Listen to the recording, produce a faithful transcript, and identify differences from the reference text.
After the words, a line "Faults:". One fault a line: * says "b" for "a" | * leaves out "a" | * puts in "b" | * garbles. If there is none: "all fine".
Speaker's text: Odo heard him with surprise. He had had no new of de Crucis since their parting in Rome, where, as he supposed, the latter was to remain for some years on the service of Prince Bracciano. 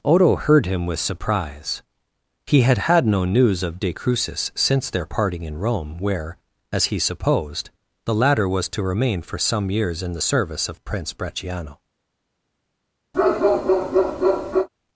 Odo heard him with surprise. He had had no news of de Crucis since their parting in Rome, where, as he supposed, the latter was to remain for some years in the service of Prince Bracciano.
Faults:
* says "news" for "new"
* says "in" for "on"